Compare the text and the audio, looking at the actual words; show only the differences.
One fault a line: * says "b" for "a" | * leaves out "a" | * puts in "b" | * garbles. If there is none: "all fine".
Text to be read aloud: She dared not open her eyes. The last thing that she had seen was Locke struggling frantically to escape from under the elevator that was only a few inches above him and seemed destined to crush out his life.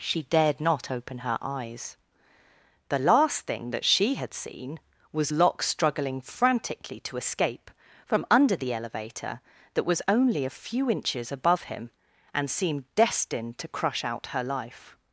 * says "her" for "his"